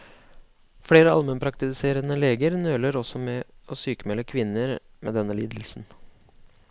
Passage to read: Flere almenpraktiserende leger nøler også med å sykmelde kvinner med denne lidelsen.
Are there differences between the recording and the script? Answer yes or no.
no